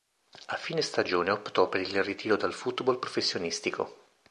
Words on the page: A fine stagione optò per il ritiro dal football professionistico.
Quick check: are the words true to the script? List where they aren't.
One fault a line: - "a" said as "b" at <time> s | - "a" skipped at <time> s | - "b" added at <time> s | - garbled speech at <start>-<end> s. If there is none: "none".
none